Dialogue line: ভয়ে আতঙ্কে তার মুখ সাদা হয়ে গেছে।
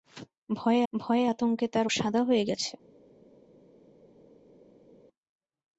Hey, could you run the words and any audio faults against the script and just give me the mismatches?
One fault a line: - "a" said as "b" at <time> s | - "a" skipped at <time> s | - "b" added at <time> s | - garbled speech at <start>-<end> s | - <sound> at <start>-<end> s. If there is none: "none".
- "ভয়ে" added at 0.9 s
- "মুখ" skipped at 1.9 s